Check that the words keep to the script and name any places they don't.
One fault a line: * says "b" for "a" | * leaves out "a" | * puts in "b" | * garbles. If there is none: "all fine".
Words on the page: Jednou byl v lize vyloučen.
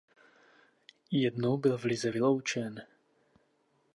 all fine